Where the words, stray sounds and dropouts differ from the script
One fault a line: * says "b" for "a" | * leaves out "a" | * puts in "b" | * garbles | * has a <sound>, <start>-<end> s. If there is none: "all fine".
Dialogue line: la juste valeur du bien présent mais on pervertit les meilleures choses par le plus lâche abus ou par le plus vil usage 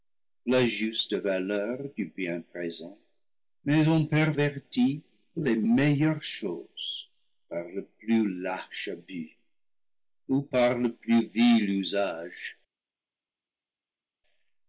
all fine